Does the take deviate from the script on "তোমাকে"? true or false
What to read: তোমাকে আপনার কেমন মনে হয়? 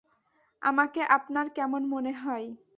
true